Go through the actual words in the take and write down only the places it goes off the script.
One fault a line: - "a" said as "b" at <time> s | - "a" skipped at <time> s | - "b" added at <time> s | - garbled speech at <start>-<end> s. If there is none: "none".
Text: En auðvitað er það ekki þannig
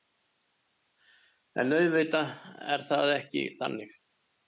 none